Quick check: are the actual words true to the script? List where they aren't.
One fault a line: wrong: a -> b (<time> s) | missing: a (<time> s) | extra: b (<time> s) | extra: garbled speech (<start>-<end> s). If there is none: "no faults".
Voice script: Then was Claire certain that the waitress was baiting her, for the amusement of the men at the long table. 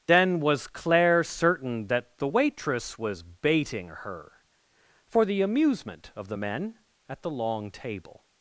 no faults